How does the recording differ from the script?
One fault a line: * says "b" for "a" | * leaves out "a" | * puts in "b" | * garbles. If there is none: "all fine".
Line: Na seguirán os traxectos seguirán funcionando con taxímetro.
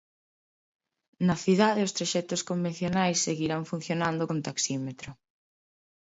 * says "cidade" for "seguirán"
* puts in "convencionais"